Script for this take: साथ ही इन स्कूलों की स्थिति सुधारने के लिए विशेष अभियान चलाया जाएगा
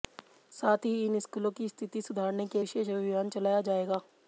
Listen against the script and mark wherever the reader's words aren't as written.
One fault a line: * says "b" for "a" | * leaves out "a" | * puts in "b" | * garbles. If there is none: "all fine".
* leaves out "लिए"